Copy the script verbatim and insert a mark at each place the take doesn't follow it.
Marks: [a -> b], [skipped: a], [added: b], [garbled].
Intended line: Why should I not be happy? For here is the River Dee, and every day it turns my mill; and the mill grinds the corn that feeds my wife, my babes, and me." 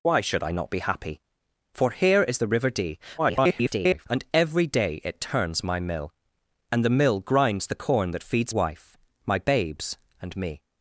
Why should I not be happy? For here is the River Dee, [garbled] and every day it turns my mill; and the mill grinds the corn that feeds [skipped: my] wife, my babes, and me."